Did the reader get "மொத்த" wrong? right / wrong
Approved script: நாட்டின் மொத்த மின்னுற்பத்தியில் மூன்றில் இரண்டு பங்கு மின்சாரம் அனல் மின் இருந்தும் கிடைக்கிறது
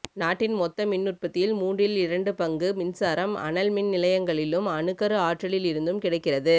right